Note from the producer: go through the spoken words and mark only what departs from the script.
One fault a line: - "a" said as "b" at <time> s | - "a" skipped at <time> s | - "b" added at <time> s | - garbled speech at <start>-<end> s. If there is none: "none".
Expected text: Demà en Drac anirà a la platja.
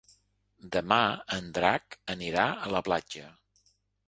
none